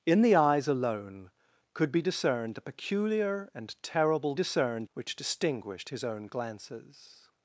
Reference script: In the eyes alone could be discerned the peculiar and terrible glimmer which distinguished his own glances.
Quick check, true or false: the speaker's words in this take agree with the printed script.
false